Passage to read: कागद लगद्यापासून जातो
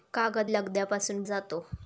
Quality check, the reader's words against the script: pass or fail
pass